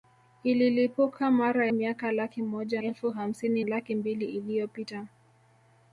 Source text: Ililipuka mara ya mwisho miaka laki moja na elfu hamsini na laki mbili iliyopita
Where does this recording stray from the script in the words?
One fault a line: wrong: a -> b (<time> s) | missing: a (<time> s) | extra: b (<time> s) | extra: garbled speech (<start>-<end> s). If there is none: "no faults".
missing: ya mwisho (1.7 s)
missing: na (2.8 s)
missing: na (3.6 s)